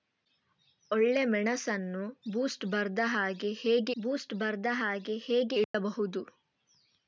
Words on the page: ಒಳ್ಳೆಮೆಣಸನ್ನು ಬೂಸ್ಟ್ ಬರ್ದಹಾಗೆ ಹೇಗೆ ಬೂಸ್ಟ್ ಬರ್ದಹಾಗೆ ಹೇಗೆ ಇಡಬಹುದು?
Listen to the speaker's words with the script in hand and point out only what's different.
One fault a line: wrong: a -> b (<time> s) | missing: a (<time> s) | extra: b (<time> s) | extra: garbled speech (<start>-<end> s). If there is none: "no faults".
no faults